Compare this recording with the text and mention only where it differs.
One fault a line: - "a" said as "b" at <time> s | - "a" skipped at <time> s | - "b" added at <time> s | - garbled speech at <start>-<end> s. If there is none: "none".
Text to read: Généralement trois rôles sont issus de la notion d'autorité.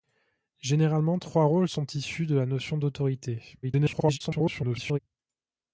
- garbled speech at 3.6-5.0 s